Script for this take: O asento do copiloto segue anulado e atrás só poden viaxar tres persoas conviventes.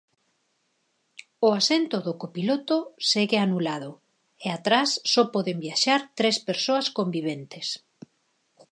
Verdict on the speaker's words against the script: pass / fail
pass